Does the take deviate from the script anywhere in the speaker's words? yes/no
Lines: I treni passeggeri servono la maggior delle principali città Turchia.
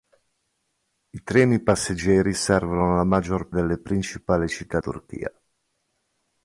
no